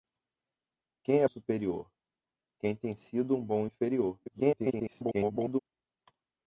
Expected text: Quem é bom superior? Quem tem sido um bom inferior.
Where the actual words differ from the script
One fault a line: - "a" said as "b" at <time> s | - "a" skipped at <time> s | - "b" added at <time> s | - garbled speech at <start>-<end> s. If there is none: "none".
- "bom" skipped at 1.3 s
- garbled speech at 4.3-5.6 s